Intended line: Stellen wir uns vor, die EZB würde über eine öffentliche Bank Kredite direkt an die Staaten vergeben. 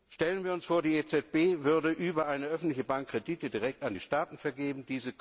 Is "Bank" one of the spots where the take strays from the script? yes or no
no